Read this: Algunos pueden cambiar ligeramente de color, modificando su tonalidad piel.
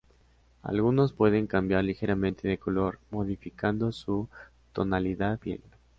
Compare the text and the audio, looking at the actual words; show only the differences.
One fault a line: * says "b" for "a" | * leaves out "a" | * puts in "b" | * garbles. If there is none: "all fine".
all fine